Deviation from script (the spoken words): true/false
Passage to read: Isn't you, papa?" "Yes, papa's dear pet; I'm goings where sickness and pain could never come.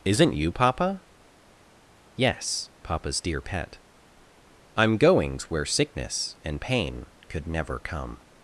false